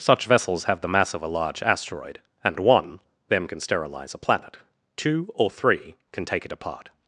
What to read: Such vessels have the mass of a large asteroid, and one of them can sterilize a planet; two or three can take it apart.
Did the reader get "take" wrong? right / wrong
right